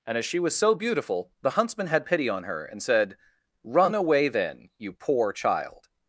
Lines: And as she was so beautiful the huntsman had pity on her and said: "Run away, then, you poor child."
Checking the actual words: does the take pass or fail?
pass